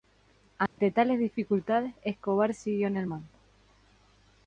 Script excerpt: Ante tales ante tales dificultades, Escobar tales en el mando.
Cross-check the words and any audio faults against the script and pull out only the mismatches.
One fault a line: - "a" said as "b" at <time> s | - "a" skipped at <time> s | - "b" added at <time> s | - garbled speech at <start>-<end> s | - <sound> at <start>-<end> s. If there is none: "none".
- dropout at 0.7-0.8 s
- "ante tales" skipped at 1.2 s
- "tales" said as "siguió" at 2.5 s